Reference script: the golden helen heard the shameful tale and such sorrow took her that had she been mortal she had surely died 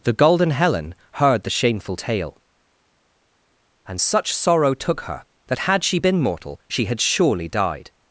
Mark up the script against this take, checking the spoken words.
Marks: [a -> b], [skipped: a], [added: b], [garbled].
the golden helen heard the shameful tale and such sorrow took her that had she been mortal she had surely died